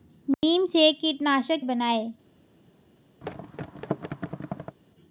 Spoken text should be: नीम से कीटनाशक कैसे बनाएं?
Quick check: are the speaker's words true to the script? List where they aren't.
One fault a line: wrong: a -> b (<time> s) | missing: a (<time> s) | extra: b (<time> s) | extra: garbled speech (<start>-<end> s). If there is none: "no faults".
missing: कैसे (1.6 s)